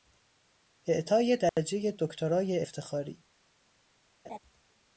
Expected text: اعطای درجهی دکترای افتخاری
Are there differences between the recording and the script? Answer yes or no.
no